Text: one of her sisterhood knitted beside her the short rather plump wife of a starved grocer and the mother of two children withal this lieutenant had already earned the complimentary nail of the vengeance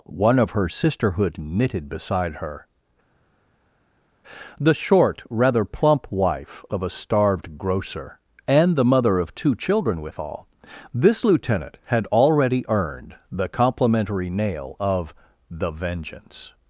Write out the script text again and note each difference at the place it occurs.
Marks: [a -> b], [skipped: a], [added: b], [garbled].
one of her sisterhood knitted beside her the short rather plump wife of a starved grocer and the mother of two children withal this lieutenant had already earned the complimentary nail of the vengeance